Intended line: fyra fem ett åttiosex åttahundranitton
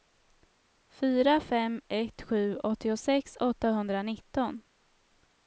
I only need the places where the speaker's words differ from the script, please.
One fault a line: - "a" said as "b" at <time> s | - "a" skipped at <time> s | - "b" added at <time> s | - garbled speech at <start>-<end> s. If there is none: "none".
- "sju" added at 2.2 s